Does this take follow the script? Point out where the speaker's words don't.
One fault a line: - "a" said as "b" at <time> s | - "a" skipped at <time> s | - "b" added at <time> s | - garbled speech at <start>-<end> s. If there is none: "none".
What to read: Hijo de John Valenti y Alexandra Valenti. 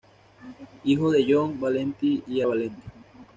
- "Alexandra" skipped at 2.4 s